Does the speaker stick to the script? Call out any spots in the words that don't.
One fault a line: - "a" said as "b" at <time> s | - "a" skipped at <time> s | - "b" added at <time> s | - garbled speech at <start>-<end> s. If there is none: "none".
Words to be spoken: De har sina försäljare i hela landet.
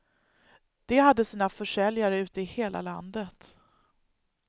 - "har" said as "hade" at 1.0 s
- "ute" added at 2.2 s